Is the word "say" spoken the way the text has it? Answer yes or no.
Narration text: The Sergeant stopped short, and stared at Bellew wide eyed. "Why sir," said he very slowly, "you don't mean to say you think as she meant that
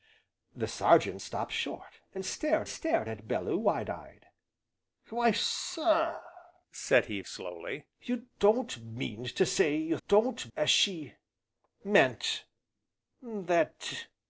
yes